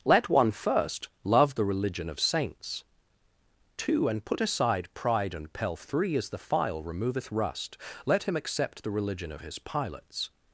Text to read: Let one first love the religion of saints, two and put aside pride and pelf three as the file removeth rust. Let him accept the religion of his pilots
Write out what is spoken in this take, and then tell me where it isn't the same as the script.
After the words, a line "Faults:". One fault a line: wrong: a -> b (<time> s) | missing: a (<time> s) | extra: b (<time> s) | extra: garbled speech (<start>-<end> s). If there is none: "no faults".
Let one first love the religion of saints, two and put aside pride and pelf three as the file removeth rust. Let him accept the religion of his pilots
Faults:
no faults